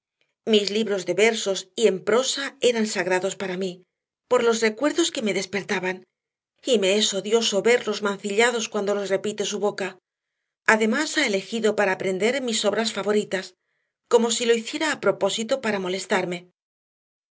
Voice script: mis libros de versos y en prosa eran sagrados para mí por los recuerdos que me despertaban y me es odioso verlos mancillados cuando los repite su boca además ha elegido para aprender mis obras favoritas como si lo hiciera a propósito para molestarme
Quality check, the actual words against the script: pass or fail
pass